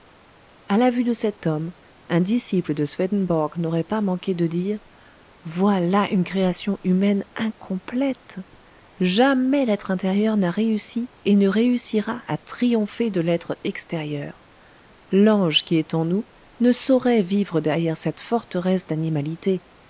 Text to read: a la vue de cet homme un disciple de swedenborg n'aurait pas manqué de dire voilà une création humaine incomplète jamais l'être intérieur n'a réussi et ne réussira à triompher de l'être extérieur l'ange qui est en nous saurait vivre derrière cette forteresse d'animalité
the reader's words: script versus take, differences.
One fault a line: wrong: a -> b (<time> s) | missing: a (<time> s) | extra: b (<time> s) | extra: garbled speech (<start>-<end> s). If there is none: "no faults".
extra: ne (16.6 s)